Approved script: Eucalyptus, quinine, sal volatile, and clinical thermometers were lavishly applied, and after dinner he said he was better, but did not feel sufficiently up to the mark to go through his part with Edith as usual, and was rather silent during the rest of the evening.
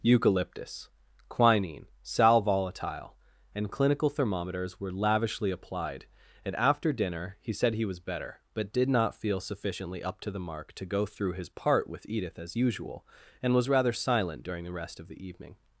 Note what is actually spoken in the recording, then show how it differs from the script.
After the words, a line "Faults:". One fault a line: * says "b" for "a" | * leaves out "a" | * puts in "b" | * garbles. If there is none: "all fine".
Eucalyptus, quinine, sal volatile, and clinical thermometers were lavishly applied, and after dinner he said he was better, but did not feel sufficiently up to the mark to go through his part with Edith as usual, and was rather silent during the rest of the evening.
Faults:
all fine